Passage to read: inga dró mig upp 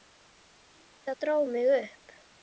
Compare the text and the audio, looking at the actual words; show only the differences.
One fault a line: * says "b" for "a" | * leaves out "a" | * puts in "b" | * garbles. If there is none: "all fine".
all fine